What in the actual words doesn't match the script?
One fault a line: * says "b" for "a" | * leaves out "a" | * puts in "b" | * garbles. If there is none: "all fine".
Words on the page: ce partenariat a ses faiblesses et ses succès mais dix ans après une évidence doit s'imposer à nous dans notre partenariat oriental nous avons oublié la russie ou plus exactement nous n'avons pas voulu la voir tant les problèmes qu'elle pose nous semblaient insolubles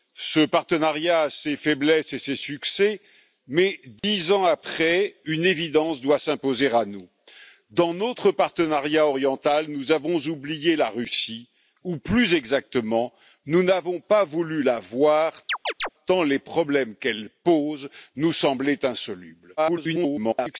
* garbles